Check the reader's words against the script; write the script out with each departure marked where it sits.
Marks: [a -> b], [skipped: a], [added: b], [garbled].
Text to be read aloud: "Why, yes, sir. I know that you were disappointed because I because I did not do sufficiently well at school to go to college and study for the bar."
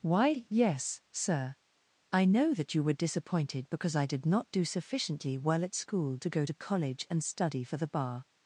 "Why, yes, sir. I know that you were disappointed because I [skipped: because I] did not do sufficiently well at school to go to college and study for the bar."